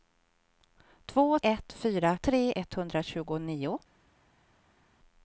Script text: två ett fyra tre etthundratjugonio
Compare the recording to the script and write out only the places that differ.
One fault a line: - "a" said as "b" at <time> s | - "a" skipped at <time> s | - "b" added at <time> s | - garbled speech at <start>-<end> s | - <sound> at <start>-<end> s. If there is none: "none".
none